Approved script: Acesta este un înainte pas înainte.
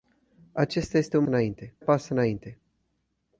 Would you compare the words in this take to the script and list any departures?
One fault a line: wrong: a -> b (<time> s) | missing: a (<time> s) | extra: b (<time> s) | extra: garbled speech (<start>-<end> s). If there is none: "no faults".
no faults